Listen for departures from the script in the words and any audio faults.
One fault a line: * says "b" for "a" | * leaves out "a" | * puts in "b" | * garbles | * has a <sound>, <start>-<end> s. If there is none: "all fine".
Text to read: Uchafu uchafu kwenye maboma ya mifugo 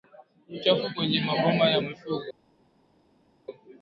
* leaves out "uchafu"